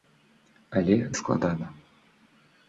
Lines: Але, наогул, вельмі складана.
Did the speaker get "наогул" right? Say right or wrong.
wrong